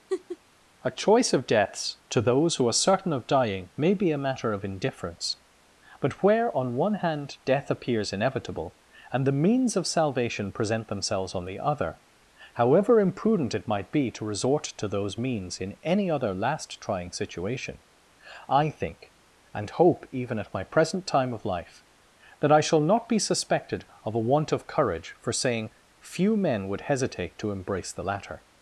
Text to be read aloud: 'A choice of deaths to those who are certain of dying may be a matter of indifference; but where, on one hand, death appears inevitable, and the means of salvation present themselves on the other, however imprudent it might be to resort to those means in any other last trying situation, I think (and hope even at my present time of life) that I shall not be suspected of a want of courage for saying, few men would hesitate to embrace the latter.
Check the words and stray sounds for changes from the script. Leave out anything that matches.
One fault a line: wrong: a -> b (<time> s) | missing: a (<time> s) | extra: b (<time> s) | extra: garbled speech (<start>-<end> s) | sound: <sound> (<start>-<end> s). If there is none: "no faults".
sound: laugh (0.1-0.4 s)